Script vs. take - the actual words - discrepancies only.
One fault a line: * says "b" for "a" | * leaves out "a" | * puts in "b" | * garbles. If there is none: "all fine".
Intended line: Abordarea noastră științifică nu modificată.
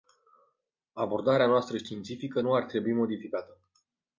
* puts in "ar trebui"